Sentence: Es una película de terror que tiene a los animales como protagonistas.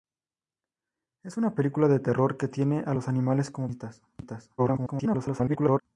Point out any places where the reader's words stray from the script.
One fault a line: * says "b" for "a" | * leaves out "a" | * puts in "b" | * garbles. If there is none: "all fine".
* garbles